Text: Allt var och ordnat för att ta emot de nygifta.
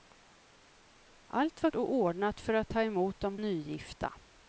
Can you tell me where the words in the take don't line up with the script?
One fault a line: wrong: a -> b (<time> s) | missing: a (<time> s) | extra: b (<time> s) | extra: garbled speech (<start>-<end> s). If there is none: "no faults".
no faults